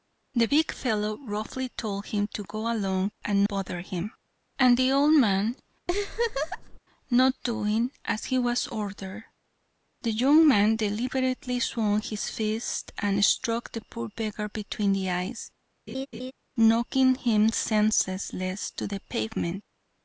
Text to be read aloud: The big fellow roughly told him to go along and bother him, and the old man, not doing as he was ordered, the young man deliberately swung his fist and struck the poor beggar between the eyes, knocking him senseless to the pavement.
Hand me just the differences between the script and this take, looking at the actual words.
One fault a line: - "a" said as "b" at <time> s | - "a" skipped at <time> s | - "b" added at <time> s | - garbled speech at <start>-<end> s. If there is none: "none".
none